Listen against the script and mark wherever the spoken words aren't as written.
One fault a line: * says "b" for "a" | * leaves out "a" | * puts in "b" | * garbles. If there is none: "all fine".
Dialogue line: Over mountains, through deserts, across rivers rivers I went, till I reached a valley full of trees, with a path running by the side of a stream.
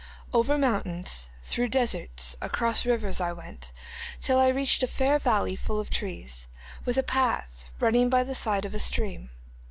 * leaves out "rivers"
* puts in "fair"